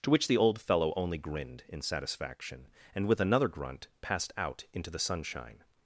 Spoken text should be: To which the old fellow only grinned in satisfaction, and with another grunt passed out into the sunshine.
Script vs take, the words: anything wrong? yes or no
no